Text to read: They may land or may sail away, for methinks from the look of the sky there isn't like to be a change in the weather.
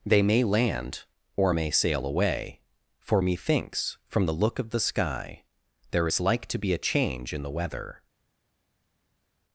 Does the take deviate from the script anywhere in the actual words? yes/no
yes